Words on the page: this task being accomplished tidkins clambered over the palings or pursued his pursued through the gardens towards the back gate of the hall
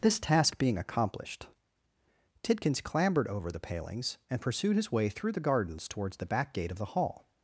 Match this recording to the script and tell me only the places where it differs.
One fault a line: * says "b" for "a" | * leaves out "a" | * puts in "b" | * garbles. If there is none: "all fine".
* says "and" for "or"
* says "way" for "pursued"